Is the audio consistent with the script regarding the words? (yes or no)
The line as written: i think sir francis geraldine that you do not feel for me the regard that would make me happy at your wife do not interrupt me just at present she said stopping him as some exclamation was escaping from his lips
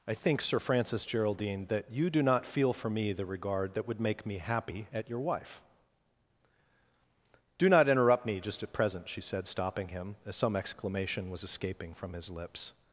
yes